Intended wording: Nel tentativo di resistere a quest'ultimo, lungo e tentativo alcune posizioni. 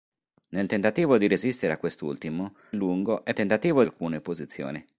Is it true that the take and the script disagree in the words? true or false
false